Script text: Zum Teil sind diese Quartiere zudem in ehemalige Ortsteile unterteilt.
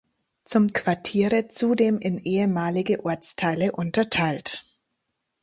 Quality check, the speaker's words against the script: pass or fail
fail